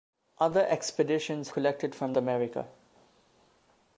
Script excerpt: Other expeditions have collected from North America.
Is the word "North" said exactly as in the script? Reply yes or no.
no